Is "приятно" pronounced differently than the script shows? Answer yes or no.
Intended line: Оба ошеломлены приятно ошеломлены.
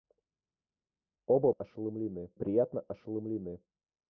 no